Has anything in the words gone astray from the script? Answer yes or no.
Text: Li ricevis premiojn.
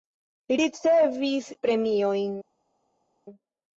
no